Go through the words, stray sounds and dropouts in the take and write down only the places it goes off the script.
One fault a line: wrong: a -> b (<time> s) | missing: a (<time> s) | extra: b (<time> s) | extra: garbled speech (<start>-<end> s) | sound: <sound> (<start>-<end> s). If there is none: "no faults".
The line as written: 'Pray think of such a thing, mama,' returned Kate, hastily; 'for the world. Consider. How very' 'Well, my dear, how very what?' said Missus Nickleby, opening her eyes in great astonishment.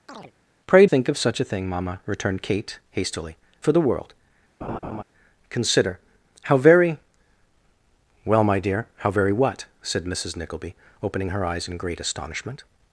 sound: chirp (0.1-0.3 s)
sound: laugh (4.6-5.0 s)